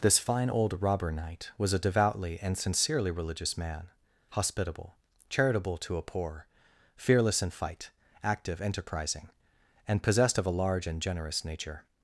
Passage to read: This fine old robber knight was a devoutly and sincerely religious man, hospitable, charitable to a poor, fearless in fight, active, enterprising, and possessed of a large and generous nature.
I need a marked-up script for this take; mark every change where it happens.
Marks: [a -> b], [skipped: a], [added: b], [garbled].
This fine old robber knight was a devoutly and sincerely religious man, hospitable, charitable to a poor, fearless in fight, active, enterprising, and possessed of a large and generous nature.